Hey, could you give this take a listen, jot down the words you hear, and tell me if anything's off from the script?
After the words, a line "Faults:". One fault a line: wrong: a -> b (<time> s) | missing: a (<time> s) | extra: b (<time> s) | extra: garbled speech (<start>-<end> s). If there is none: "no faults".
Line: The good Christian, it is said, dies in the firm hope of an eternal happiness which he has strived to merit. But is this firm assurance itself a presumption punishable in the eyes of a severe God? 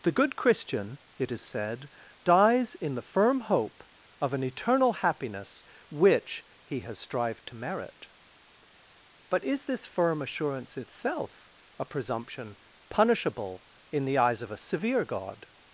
The good Christian, it is said, dies in the firm hope of an eternal happiness which he has strived to merit. But is this firm assurance itself a presumption punishable in the eyes of a severe God?
Faults:
no faults